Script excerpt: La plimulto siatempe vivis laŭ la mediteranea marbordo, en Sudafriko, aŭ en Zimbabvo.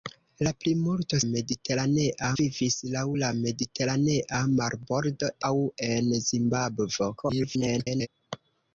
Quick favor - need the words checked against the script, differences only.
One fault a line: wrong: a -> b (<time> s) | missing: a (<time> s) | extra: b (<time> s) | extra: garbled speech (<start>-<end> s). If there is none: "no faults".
wrong: siatempe -> mediteranea (1.3 s)
missing: en Sudafriko (5.3 s)
extra: garbled speech (7.2-8.1 s)